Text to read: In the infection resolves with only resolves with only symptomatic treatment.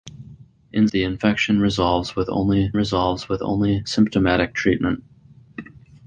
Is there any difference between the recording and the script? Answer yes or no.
no